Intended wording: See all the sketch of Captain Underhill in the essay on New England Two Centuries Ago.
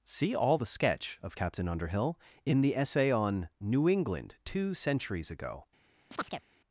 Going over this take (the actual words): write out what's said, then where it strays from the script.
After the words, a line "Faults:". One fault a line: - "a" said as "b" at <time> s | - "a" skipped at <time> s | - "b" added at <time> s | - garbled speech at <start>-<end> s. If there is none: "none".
See all the sketch of Captain Underhill in the essay on New England Two Centuries Ago.
Faults:
none